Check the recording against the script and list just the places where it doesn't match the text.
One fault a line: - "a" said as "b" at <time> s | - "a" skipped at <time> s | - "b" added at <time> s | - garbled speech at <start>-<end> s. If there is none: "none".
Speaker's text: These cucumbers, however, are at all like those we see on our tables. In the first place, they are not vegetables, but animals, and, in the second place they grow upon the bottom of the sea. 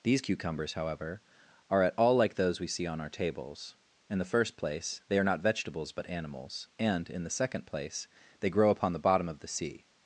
none